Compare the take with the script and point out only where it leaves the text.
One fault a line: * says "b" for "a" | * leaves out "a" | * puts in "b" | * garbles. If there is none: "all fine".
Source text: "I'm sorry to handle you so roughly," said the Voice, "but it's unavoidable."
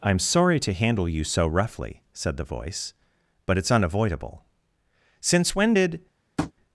* puts in "Since when did"